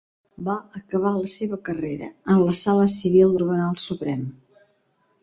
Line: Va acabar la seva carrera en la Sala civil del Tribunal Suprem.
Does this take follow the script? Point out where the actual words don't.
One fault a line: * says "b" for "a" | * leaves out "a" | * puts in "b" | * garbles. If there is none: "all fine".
* leaves out "del"